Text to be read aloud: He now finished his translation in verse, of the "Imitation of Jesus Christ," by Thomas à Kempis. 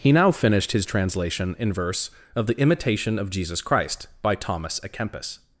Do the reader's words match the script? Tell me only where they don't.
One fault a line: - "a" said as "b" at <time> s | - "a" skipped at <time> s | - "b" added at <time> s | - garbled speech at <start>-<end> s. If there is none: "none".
none